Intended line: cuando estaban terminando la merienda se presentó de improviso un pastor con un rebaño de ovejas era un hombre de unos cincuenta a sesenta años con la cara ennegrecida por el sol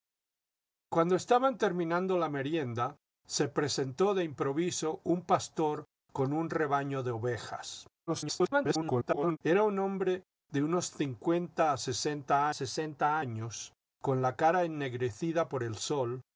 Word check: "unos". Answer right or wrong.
right